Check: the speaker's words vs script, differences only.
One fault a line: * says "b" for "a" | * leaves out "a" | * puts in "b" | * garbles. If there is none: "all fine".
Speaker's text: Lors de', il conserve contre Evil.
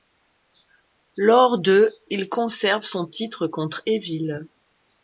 * puts in "son titre"